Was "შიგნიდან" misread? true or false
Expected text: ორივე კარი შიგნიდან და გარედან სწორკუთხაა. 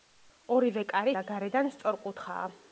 true